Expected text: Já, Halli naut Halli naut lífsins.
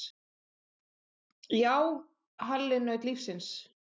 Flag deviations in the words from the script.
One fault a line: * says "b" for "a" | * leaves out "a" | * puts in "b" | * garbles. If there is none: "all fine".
* leaves out "Halli naut"